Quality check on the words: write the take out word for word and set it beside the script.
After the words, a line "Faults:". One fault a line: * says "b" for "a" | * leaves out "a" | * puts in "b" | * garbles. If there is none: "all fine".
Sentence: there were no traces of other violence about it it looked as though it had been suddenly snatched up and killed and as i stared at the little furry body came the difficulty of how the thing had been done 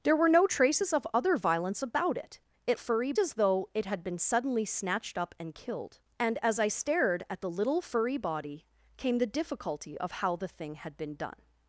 there were no traces of other violence about it it furry as though it had been suddenly snatched up and killed and as i stared at the little furry body came the difficulty of how the thing had been done
Faults:
* says "furry" for "looked"